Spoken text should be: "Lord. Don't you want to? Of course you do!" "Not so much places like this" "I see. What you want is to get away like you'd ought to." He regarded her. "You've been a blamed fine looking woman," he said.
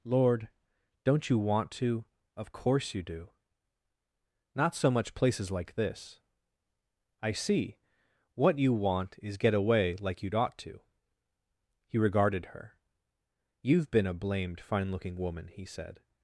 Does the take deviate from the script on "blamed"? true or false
false